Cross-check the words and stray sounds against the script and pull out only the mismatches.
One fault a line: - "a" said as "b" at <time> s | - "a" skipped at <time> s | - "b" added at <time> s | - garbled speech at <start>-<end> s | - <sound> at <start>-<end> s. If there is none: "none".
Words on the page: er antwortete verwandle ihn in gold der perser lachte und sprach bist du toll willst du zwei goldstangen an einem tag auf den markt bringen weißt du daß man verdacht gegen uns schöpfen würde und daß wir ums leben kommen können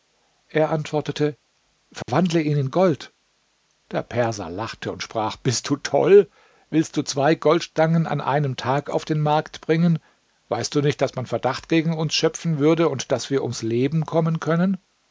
- dropout at 2.0-2.1 s
- "nicht" added at 10.8 s